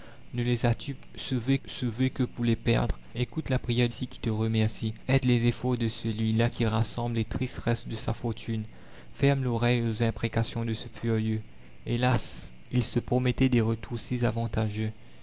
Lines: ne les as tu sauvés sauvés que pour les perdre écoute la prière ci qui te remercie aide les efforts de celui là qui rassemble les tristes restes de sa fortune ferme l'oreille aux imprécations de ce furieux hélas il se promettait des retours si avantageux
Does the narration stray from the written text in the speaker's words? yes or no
no